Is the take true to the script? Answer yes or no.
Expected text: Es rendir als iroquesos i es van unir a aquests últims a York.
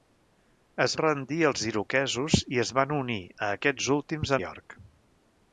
yes